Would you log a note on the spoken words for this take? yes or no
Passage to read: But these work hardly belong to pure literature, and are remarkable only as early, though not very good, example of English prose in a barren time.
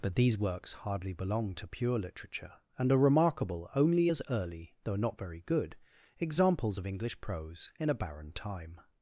yes